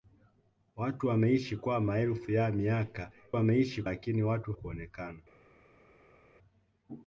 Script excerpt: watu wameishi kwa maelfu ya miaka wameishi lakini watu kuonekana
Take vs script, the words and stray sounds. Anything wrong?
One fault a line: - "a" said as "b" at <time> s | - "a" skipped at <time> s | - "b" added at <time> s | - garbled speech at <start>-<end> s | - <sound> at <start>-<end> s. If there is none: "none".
none